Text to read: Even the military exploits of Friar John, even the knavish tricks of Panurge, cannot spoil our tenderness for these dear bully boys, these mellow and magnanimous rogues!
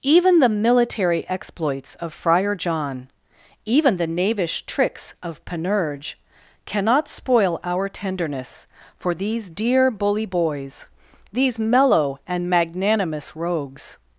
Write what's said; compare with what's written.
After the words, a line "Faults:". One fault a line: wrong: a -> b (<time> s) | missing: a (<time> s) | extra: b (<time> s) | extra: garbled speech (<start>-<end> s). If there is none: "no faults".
Even the military exploits of Friar John, even the knavish tricks of Panurge, cannot spoil our tenderness for these dear bully boys, these mellow and magnanimous rogues!
Faults:
no faults